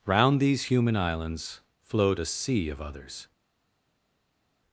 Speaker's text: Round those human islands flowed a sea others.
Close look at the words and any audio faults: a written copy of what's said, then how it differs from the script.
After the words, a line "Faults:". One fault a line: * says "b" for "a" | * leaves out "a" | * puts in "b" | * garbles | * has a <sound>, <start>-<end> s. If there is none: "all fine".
Round these human islands flowed a sea of others.
Faults:
* says "these" for "those"
* puts in "of"